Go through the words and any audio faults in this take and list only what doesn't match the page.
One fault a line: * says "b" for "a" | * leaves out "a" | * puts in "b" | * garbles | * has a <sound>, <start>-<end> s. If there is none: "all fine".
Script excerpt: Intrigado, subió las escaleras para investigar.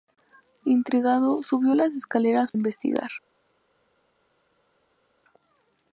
* leaves out "para"